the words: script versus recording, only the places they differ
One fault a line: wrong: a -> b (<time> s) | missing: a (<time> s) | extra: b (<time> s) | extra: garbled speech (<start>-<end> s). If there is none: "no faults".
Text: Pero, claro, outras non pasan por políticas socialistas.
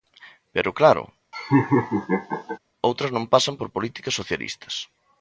no faults